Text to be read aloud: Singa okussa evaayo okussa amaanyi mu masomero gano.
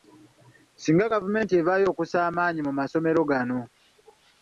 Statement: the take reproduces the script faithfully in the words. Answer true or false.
false